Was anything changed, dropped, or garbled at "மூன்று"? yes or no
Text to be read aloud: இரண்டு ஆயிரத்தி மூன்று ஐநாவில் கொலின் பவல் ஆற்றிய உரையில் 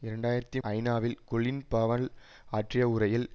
yes